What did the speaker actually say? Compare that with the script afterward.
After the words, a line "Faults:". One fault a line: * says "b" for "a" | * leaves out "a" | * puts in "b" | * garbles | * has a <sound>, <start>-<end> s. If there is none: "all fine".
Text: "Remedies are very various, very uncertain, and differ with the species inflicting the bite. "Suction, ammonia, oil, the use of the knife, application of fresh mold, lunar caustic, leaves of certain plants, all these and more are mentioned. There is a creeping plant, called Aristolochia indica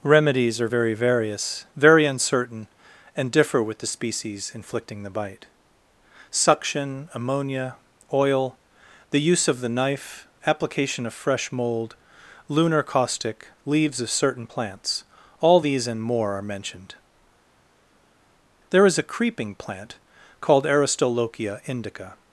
"Remedies are very various, very uncertain, and differ with the species inflicting the bite. "Suction, ammonia, oil, the use of the knife, application of fresh mold, lunar caustic, leaves of certain plants, all these and more are mentioned. There is a creeping plant, called Aristolochia indica
Faults:
all fine